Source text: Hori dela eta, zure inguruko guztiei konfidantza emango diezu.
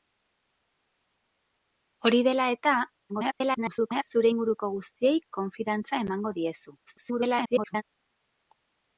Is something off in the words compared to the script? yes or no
yes